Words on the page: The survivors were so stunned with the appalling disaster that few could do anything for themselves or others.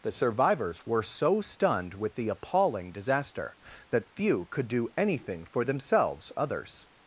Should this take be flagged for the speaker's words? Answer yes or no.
yes